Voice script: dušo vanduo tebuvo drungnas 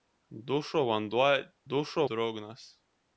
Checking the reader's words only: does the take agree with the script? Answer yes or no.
no